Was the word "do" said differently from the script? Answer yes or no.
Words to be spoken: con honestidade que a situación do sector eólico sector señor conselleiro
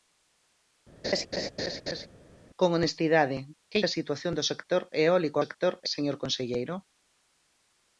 no